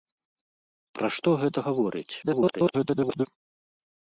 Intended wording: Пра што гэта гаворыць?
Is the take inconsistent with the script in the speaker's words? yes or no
yes